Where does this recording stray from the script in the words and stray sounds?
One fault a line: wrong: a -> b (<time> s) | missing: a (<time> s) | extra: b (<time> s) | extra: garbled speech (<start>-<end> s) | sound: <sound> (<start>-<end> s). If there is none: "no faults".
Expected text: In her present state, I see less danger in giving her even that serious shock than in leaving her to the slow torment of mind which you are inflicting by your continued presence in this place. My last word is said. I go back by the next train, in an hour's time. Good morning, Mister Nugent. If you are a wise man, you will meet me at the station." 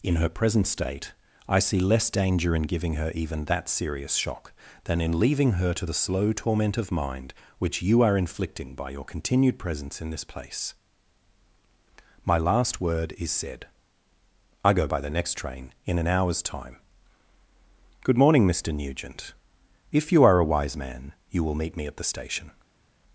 missing: back (14.9 s)